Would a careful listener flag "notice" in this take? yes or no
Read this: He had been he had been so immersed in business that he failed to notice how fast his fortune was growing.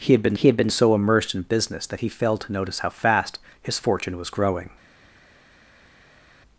no